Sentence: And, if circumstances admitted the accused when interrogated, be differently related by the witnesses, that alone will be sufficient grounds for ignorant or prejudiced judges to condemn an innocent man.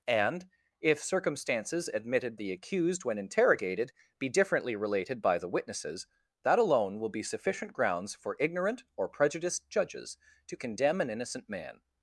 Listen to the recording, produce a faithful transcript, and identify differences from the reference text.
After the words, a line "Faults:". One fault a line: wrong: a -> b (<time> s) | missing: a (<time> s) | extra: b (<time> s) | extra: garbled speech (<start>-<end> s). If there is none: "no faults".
And, if circumstances admitted the accused when interrogated, be differently related by the witnesses, that alone will be sufficient grounds for ignorant or prejudiced judges to condemn an innocent man.
Faults:
no faults